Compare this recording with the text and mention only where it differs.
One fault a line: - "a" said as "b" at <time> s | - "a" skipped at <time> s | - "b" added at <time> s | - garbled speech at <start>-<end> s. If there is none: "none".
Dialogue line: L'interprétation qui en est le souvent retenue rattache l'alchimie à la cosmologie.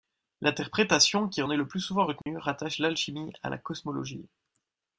- "plus" added at 1.7 s